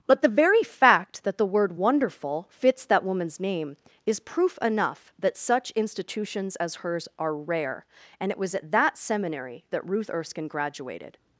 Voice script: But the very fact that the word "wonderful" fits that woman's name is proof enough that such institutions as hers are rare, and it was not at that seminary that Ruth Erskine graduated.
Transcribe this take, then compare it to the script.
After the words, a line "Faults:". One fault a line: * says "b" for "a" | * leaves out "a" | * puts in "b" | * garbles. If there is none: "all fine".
But the very fact that the word "wonderful" fits that woman's name is proof enough that such institutions as hers are rare, and it was at that seminary that Ruth Erskine graduated.
Faults:
* leaves out "not"